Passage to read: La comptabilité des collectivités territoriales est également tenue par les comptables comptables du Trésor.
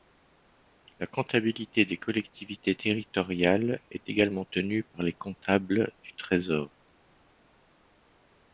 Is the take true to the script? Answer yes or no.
no